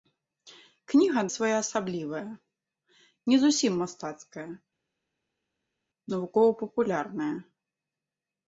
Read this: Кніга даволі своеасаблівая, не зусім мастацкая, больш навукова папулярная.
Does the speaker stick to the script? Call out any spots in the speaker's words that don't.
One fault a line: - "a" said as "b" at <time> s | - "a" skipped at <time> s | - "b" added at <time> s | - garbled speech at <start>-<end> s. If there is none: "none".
- "даволі" skipped at 1.2 s
- "больш" skipped at 4.5 s